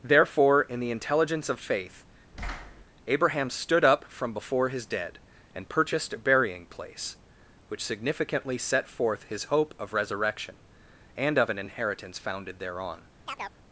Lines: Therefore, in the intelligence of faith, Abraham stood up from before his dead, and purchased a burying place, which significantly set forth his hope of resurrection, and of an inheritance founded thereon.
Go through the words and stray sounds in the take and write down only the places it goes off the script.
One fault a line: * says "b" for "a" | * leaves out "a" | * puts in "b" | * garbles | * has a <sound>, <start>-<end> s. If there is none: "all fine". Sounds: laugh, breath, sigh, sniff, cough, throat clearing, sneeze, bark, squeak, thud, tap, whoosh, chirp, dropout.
* has a thud, 2.3-2.8 s
* has a chirp, 13.3-13.6 s